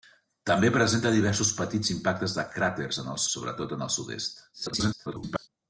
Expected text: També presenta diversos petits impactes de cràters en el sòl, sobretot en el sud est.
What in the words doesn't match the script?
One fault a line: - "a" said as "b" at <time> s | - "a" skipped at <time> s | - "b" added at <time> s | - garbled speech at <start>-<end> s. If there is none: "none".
- "sòl" skipped at 3.2 s
- garbled speech at 4.5-5.5 s